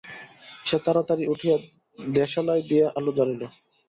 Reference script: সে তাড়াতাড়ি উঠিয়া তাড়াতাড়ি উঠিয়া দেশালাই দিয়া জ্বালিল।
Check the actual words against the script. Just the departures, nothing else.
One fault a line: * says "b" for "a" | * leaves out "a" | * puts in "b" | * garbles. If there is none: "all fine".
* leaves out "তাড়াতাড়ি উঠিয়া"
* puts in "আলো"